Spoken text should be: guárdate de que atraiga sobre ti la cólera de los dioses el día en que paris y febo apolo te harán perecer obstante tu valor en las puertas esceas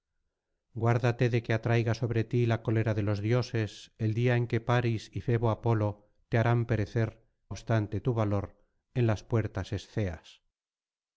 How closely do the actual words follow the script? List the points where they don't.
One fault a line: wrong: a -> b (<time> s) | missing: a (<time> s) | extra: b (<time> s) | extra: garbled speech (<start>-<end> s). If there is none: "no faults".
no faults